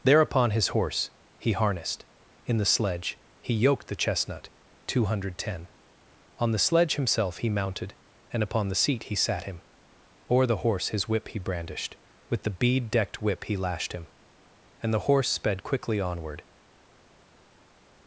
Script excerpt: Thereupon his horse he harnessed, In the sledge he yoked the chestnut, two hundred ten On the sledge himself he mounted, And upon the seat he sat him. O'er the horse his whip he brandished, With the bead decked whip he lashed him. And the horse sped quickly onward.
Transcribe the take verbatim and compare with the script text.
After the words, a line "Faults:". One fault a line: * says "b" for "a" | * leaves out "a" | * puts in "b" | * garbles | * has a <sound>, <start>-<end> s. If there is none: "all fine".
Thereupon his horse he harnessed, In the sledge he yoked the chestnut, two hundred ten On the sledge himself he mounted, And upon the seat he sat him. O'er the horse his whip he brandished, With the bead decked whip he lashed him. And the horse sped quickly onward.
Faults:
all fine